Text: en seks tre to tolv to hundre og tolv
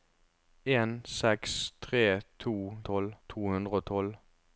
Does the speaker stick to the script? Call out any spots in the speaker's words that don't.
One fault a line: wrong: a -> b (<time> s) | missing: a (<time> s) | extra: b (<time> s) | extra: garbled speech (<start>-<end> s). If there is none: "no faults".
no faults